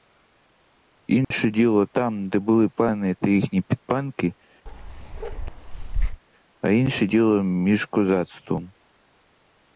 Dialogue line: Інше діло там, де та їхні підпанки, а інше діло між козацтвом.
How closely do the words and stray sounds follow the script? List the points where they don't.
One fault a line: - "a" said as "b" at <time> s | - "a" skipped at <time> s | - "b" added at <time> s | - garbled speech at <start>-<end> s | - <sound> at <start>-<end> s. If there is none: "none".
- dropout at 1.2-1.3 s
- "були пани" added at 2.4 s
- bark at 4.7-6.2 s